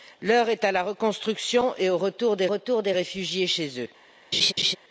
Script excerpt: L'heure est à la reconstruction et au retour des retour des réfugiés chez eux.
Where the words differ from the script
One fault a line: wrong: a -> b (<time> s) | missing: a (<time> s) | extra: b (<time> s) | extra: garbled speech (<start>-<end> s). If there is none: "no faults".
no faults